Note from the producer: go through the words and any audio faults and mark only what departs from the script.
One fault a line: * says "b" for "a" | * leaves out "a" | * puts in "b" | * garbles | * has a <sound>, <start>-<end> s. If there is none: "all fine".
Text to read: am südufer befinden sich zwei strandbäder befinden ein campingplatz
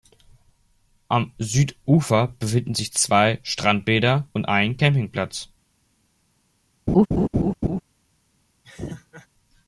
* says "und" for "befinden"
* has a laugh, 6.9-7.8 s
* has a laugh, 8.6-9.3 s